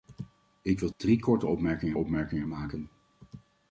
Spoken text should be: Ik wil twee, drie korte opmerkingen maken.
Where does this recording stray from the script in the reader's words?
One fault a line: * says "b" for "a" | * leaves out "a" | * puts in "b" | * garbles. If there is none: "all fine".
* leaves out "twee"
* puts in "opmerkingen"